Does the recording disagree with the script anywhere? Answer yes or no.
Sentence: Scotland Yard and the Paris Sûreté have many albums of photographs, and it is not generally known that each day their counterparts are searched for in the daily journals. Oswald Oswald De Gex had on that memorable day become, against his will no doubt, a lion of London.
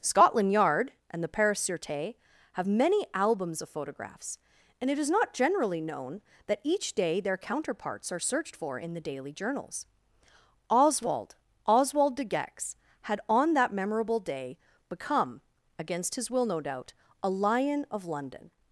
no